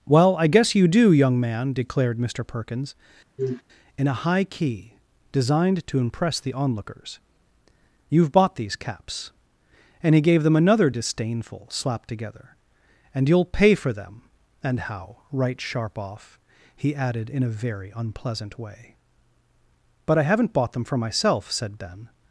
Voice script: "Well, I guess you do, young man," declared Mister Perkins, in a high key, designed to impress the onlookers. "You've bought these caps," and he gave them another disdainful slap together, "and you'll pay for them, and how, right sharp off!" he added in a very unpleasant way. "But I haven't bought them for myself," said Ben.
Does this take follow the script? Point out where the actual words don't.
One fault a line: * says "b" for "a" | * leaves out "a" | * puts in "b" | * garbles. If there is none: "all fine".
all fine